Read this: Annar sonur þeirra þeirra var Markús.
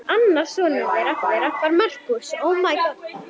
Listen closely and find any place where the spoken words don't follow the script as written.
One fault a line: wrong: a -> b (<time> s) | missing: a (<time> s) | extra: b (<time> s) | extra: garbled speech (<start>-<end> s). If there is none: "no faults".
no faults